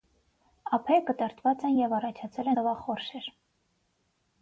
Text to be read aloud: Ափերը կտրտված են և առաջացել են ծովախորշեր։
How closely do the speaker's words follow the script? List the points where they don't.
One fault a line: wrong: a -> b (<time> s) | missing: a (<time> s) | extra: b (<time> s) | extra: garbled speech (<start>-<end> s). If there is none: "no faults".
missing: են (2.5 s)